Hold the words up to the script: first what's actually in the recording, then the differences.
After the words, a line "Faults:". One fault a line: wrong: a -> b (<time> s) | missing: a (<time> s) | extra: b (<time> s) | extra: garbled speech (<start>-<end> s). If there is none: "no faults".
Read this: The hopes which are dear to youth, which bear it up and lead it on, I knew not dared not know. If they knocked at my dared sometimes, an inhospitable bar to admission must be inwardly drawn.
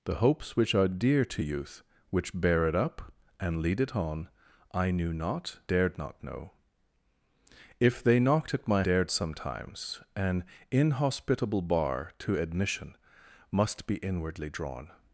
The hopes which are dear to youth, which bear it up and lead it on, I knew not dared not know. If they knocked at my dared sometimes, an inhospitable bar to admission must be inwardly drawn.
Faults:
no faults